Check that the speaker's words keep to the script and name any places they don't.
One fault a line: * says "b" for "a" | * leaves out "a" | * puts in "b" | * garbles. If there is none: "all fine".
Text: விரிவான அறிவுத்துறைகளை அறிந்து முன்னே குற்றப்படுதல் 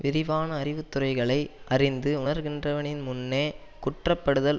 * puts in "உணர்கின்றவனின்"